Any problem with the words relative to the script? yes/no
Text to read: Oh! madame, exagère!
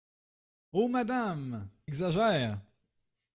no